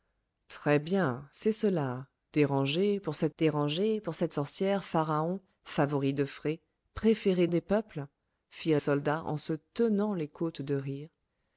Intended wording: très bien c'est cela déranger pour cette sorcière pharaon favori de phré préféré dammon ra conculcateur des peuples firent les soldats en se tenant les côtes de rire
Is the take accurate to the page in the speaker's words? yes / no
no